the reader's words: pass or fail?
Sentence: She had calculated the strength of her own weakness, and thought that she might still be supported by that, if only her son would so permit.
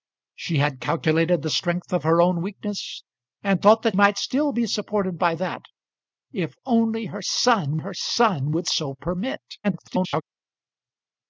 fail